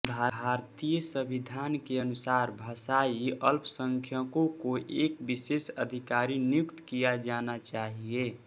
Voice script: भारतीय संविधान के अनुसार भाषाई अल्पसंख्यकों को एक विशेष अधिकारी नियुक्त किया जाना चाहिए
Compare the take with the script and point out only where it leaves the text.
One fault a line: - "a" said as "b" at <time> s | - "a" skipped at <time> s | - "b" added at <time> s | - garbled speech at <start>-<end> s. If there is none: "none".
none